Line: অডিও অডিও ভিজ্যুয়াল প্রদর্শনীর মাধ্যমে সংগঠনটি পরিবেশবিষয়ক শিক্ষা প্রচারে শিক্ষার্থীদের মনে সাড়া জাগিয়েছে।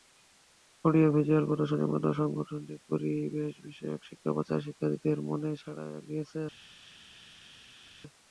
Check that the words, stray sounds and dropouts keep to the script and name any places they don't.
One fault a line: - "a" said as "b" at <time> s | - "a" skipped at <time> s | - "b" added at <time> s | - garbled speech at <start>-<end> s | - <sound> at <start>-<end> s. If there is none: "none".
- "অডিও" skipped at 1.1 s